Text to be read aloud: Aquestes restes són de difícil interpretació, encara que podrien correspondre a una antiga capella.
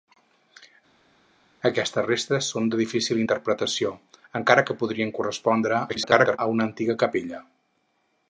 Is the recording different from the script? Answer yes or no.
yes